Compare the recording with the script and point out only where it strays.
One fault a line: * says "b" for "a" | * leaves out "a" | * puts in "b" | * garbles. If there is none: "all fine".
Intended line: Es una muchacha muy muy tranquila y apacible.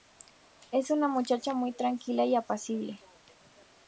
* leaves out "muy"